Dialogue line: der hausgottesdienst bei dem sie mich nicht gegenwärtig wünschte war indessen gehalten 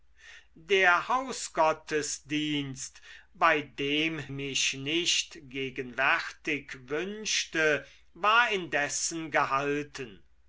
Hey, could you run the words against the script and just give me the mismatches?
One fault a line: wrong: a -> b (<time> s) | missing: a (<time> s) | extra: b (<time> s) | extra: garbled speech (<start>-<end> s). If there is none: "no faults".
missing: sie (4.2 s)